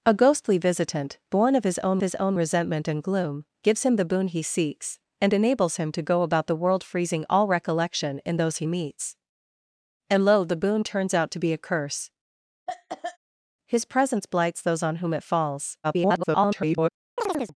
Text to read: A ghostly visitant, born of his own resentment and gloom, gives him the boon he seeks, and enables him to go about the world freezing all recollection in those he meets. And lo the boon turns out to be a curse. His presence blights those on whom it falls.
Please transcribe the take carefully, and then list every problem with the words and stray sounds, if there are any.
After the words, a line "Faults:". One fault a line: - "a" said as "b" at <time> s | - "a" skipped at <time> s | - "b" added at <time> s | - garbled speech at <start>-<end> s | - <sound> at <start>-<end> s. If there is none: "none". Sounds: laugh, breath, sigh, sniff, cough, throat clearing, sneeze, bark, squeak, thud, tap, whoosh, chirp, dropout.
A ghostly visitant, born of his own his own resentment and gloom, gives him the boon he seeks, and enables him to go about the world freezing all recollection in those he meets. And lo the boon turns out to be a curse. His presence blights those on whom it falls. [garbled]
Faults:
- "his own" added at 2.0 s
- cough at 12.7-13.2 s
- garbled speech at 15.8-16.9 s
- chirp at 17.2-17.5 s